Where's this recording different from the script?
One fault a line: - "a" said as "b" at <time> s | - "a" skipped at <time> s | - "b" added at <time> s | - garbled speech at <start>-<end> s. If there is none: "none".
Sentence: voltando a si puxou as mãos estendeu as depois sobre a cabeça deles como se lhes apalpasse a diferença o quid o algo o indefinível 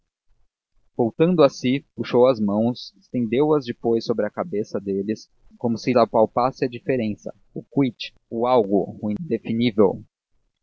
- "lhes" skipped at 5.9 s